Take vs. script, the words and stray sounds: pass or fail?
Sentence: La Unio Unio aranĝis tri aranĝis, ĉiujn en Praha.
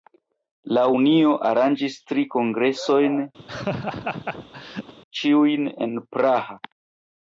fail